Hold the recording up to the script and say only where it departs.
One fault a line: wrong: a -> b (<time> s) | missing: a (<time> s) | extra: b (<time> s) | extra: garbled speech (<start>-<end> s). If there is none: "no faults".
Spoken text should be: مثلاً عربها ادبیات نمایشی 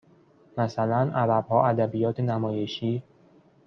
no faults